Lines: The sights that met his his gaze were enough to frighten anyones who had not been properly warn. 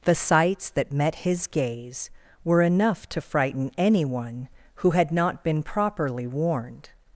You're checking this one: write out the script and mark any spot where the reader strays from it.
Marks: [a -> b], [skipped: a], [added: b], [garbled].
The sights that met his [skipped: his] gaze were enough to frighten [anyones -> anyone] who had not been properly [warn. -> warned]